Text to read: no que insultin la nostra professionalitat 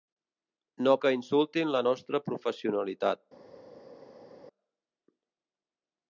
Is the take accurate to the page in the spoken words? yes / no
yes